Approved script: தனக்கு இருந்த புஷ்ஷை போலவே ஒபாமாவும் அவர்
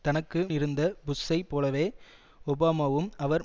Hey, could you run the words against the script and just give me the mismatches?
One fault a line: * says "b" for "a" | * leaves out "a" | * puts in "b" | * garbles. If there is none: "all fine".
all fine